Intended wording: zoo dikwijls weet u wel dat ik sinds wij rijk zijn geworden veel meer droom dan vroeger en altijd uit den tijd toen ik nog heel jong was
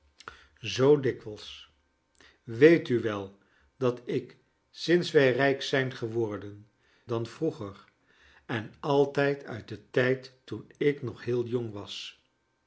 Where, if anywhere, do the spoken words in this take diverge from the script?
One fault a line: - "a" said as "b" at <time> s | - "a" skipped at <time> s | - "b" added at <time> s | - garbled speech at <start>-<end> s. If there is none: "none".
- "veel meer droom" skipped at 6.7 s